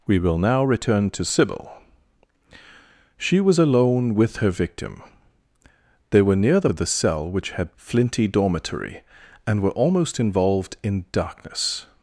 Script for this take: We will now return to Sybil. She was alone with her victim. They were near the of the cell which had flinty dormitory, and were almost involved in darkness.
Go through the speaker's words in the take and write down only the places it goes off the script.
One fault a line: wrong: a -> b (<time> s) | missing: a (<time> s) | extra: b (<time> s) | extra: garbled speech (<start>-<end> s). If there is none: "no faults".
no faults